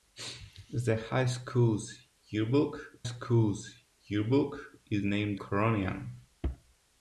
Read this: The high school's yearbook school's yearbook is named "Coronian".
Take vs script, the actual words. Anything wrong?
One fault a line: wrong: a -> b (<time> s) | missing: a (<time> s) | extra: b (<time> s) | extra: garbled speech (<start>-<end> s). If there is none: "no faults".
no faults